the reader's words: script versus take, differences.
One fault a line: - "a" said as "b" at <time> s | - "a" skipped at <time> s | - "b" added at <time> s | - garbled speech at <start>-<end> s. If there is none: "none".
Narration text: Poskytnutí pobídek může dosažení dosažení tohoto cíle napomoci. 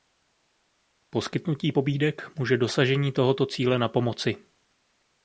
- "dosažení" skipped at 3.1 s